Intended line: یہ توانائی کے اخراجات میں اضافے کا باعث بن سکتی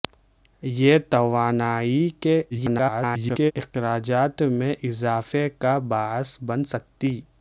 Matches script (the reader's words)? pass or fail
fail